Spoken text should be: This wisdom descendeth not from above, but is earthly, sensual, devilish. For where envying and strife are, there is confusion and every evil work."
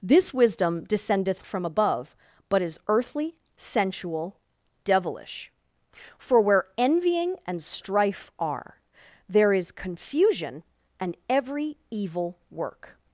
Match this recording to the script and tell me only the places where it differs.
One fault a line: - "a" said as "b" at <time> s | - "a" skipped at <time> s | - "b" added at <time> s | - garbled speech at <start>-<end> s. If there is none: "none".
- "not" skipped at 1.4 s